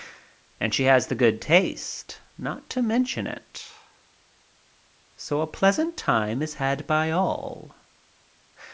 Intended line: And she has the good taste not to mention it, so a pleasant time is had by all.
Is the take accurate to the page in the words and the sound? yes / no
yes